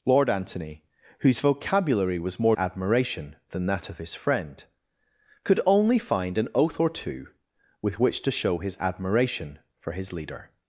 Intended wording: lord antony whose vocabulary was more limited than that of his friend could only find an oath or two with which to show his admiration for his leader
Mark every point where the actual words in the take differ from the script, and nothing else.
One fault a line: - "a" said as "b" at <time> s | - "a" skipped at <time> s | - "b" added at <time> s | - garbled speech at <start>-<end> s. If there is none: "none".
- "limited" said as "admiration" at 2.5 s